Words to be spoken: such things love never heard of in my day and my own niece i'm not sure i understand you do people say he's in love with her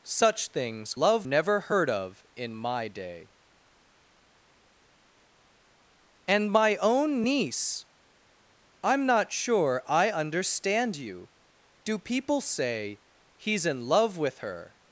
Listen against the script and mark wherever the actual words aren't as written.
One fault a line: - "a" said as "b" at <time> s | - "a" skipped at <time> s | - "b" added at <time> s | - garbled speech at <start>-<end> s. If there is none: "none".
none